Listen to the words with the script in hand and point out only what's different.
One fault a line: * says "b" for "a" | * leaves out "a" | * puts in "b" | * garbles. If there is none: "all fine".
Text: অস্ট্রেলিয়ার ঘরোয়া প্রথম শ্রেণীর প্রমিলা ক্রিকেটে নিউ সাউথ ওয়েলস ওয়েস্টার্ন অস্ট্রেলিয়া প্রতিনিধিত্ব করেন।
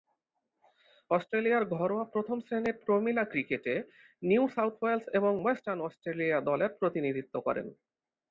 * puts in "এবং"
* puts in "দলের"